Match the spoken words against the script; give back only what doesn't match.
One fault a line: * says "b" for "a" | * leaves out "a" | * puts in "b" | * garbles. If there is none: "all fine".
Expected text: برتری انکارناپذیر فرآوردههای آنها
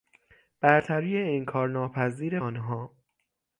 * leaves out "فرآوردههای"